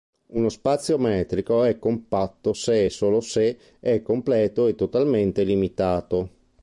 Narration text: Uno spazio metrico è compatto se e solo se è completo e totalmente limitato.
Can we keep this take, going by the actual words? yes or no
yes